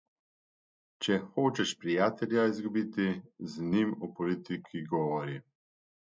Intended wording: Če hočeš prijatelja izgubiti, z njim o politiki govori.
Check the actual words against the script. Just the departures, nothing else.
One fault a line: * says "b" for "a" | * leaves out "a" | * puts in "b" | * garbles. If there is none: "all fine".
all fine